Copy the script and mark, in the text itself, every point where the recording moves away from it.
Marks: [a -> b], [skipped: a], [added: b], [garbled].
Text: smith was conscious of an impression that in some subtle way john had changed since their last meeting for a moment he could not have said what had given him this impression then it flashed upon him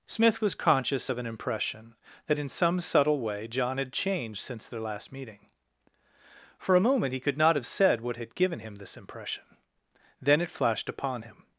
smith was conscious of an impression that in some subtle way john had changed since their last meeting for a moment he could not have said what had given him this impression then it flashed upon him